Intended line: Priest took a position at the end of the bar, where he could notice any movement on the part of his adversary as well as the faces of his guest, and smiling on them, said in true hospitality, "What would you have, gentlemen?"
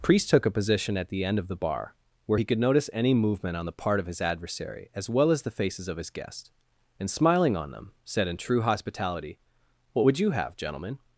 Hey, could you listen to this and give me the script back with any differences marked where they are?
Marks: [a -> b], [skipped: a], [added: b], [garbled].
Priest took a position at the end of the bar, where he could notice any movement on the part of his adversary as well as the faces of his guest, and smiling on them, said in true hospitality, "What would you have, gentlemen?"